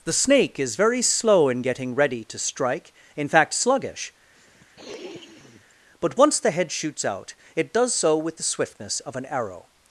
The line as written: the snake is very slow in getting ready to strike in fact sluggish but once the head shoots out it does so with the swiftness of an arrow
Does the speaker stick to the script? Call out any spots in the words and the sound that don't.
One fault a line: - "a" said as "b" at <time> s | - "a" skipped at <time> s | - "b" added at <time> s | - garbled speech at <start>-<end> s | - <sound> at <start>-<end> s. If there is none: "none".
- sniff at 4.3-5.7 s